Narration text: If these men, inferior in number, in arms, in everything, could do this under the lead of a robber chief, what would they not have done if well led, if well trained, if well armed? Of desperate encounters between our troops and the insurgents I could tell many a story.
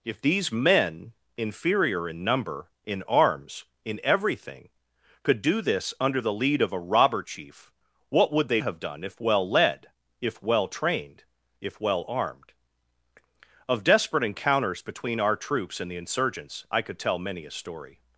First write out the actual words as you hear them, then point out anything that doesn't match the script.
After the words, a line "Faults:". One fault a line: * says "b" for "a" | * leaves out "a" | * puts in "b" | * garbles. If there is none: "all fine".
If these men, inferior in number, in arms, in everything, could do this under the lead of a robber chief, what would they have done if well led, if well trained, if well armed? Of desperate encounters between our troops and the insurgents I could tell many a story.
Faults:
* leaves out "not"